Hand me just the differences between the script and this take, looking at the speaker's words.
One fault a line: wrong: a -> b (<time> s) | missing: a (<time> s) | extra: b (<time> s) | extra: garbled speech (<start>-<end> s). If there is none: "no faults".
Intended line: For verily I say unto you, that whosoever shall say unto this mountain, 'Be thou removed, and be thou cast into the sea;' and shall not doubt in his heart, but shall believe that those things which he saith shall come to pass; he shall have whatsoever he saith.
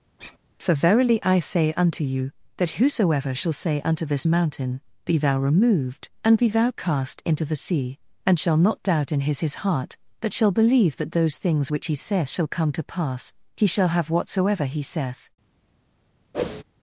extra: his (9.4 s)